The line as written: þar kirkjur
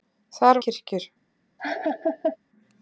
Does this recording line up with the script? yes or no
yes